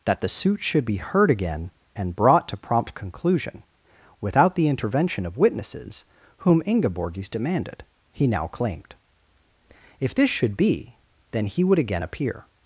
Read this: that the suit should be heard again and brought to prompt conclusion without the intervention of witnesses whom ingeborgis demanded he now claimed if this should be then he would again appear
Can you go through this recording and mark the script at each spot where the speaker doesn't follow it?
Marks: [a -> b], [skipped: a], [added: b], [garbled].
that the suit should be heard again and brought to prompt conclusion without the intervention of witnesses whom ingeborgis demanded he now claimed if this should be then he would again appear